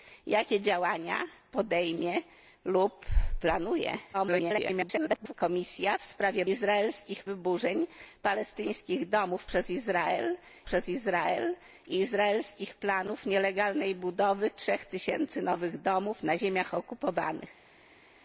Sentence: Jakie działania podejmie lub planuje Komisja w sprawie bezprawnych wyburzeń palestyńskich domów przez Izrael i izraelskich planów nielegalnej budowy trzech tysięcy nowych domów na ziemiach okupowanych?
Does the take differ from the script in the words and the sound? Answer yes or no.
yes